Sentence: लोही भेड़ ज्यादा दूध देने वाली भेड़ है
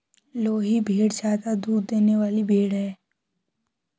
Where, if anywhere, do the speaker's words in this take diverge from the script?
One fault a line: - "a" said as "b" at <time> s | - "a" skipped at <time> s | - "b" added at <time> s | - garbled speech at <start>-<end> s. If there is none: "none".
none